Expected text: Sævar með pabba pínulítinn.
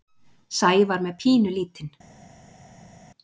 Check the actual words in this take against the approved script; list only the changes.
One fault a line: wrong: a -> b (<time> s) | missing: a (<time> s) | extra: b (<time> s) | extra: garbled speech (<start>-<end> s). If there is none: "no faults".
missing: pabba (1.1 s)